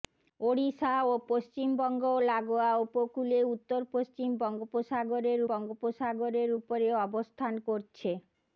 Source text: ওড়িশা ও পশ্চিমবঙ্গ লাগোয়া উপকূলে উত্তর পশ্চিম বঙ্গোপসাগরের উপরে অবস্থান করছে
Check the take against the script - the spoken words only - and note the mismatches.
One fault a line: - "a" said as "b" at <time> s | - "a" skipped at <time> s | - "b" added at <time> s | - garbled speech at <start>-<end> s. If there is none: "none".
- "বঙ্গোপসাগরের" added at 5.5 s